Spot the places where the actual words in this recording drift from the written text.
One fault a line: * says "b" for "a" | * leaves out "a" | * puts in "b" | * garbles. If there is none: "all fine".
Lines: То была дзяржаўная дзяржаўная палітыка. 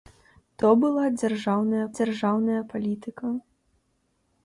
all fine